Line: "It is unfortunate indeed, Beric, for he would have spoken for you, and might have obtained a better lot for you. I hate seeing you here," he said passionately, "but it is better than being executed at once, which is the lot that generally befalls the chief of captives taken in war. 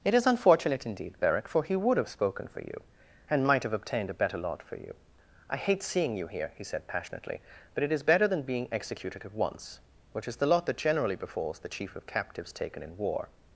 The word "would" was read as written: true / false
true